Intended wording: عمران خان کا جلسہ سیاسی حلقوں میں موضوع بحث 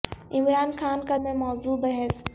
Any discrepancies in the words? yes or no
yes